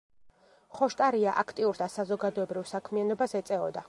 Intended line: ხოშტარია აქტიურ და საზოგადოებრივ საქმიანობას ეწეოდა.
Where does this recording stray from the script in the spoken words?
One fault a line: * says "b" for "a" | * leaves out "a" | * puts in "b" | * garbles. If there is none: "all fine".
all fine